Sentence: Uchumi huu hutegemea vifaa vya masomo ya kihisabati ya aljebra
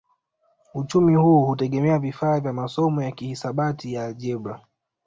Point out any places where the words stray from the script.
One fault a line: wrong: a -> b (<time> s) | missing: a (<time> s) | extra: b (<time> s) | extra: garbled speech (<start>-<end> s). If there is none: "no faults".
no faults